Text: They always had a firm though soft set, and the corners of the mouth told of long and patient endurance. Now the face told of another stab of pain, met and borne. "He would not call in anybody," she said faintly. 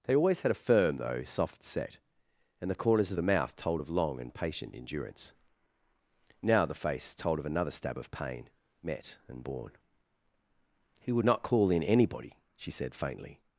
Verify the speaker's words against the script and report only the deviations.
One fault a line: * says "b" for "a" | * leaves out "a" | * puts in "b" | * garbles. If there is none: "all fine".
all fine